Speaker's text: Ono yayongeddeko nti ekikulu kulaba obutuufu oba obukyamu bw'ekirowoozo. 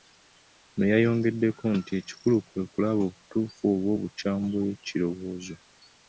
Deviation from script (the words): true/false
true